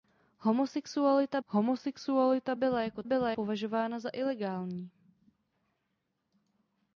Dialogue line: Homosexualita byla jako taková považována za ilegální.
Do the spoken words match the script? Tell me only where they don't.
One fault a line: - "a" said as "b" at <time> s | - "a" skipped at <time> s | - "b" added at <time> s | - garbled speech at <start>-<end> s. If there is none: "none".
- "homosexualita" added at 1.4 s
- "taková" said as "byla" at 3.0 s